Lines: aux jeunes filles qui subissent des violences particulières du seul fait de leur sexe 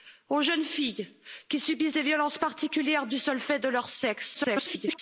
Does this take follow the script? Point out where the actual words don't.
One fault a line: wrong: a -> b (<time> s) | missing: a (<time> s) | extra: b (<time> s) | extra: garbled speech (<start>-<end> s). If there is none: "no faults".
extra: garbled speech (4.3-5.0 s)